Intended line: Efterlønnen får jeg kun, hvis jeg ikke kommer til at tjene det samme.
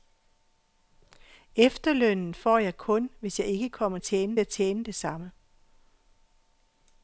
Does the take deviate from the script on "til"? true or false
true